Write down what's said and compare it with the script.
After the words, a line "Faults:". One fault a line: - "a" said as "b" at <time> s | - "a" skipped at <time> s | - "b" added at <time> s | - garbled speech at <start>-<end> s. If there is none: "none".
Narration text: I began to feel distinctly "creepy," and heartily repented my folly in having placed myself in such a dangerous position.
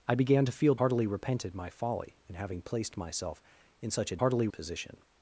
I began to feel heartily repented my folly in having placed myself in such a heartily position.
Faults:
- "distinctly creepy and" skipped at 0.8 s
- "dangerous" said as "heartily" at 4.2 s